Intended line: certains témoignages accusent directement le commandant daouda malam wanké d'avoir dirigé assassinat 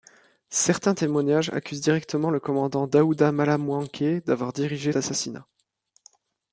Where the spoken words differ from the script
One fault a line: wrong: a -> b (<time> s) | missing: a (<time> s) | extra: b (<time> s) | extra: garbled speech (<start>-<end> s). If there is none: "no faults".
no faults